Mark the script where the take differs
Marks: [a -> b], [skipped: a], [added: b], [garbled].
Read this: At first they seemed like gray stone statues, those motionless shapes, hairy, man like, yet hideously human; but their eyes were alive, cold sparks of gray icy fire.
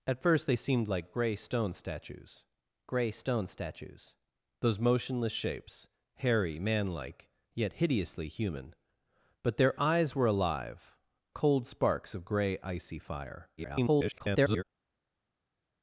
At first they seemed like gray stone statues, [added: gray stone statues] those motionless shapes, hairy, man like, yet hideously human; but their eyes were alive, cold sparks of gray icy fire. [garbled]